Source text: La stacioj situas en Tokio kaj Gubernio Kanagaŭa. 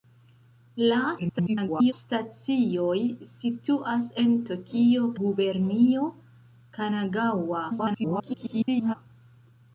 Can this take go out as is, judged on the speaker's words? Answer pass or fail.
fail